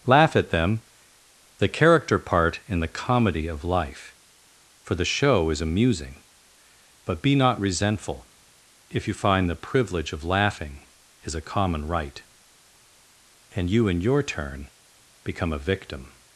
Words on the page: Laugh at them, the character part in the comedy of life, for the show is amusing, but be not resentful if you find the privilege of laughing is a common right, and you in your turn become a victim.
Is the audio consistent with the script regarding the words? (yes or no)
yes